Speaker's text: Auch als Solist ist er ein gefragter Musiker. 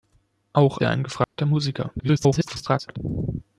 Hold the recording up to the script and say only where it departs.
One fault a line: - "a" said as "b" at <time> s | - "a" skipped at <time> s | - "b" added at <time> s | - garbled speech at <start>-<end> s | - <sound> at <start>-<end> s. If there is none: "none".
- "als Solist ist" skipped at 0.8 s
- dropout at 1.2-1.4 s
- garbled speech at 2.0-3.0 s